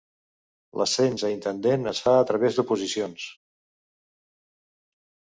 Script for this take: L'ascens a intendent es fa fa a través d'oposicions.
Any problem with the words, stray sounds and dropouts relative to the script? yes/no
yes